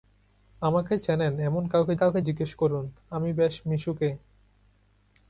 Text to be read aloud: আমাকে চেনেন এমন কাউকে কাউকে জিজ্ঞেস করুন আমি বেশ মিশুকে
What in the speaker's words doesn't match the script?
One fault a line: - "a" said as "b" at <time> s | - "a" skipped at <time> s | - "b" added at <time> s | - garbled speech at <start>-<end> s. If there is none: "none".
none